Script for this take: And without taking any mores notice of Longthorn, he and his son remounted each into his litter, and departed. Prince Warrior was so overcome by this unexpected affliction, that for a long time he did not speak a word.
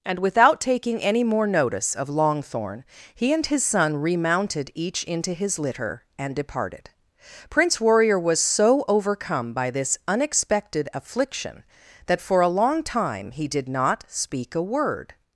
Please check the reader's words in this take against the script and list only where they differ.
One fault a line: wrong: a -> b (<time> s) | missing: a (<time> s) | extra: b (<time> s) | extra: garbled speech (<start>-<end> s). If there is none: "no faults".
wrong: mores -> more (1.2 s)